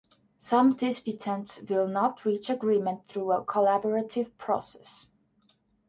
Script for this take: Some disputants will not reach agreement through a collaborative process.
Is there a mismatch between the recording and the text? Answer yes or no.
no